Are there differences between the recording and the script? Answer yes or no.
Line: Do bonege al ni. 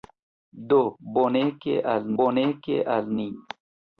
yes